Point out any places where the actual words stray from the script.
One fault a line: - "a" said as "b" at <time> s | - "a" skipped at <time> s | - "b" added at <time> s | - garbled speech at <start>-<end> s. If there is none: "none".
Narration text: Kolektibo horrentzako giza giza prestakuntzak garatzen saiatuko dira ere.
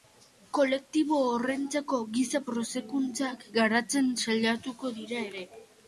- "giza" skipped at 2.4 s